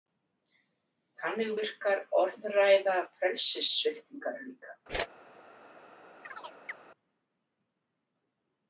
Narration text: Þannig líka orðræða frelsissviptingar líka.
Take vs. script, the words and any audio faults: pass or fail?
fail